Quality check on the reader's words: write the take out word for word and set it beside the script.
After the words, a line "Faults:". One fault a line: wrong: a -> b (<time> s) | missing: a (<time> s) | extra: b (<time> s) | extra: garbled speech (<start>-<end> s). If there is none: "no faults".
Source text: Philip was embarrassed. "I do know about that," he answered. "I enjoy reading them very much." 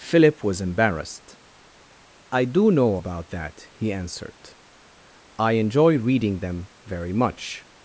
Philip was embarrassed. "I do know about that," he answered. "I enjoy reading them very much."
Faults:
no faults